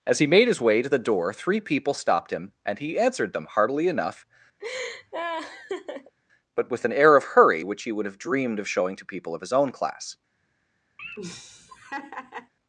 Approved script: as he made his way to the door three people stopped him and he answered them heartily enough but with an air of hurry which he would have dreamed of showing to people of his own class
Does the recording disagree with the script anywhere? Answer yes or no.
no